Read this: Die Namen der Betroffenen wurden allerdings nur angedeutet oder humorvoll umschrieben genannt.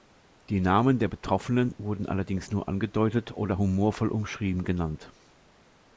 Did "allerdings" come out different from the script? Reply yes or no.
no